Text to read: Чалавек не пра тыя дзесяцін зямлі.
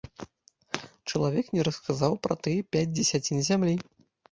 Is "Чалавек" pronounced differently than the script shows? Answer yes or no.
no